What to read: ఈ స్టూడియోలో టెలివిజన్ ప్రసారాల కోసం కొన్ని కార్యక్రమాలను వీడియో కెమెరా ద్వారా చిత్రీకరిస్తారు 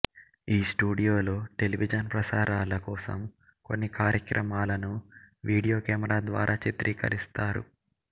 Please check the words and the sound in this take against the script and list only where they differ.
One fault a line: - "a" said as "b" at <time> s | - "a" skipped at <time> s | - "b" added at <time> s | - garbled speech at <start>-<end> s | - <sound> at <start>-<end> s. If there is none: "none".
none